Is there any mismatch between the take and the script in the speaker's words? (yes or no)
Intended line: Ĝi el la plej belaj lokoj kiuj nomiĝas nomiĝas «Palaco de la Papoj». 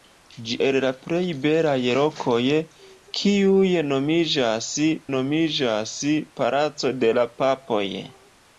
no